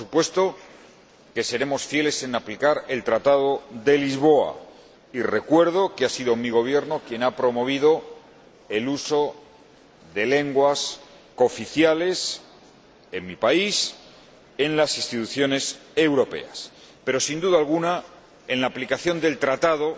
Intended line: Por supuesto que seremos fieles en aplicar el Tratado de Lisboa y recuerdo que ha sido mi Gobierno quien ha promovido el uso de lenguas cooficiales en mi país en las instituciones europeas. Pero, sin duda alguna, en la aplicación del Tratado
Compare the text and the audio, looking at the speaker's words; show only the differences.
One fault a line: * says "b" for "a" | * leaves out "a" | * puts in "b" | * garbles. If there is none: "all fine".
all fine